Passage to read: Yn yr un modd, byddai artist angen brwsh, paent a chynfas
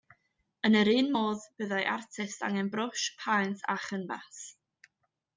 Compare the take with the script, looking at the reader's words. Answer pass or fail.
pass